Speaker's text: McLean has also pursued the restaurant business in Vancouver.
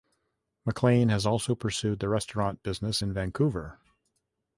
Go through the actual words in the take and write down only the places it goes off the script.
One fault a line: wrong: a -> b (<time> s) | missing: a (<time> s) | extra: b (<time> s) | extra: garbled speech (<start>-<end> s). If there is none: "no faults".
no faults